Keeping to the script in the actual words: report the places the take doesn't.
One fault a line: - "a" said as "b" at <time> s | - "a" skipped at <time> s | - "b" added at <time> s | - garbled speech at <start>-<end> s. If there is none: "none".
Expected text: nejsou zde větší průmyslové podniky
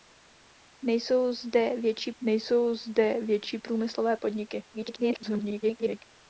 - "nejsou zde větší" added at 2.2 s
- garbled speech at 4.7-6.0 s